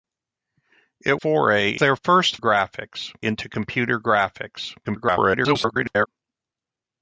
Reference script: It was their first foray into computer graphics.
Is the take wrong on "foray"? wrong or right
wrong